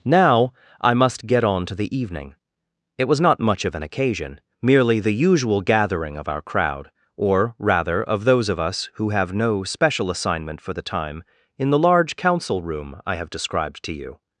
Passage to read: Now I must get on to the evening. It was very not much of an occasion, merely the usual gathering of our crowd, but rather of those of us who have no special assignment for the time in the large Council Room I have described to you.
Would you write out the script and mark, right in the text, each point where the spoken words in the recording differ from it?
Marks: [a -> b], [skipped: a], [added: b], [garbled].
Now I must get on to the evening. It was [skipped: very] not much of an occasion, merely the usual gathering of our crowd, [but -> or] rather of those of us who have no special assignment for the time in the large Council Room I have described to you.